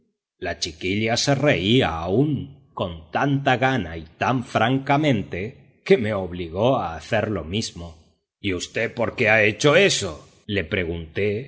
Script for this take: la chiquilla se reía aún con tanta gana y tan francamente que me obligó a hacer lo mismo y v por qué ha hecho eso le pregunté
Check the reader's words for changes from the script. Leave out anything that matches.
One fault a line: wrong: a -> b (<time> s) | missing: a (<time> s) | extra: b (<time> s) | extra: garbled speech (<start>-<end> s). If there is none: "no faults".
no faults